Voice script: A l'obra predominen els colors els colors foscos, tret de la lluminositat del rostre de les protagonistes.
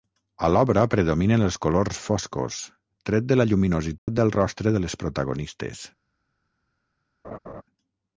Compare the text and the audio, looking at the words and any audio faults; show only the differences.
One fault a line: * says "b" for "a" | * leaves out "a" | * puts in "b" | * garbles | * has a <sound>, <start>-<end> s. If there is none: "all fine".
* leaves out "els colors"
* has a dropout, 4.0-4.1 s
* has a laugh, 7.2-7.6 s